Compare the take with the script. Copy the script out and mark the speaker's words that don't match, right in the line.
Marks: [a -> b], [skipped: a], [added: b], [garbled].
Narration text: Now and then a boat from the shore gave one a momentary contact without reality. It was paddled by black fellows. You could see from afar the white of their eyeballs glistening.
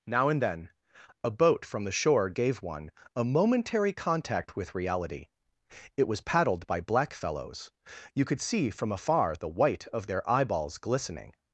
Now and then a boat from the shore gave one a momentary contact [without -> with] reality. It was paddled by black fellows. You could see from afar the white of their eyeballs glistening.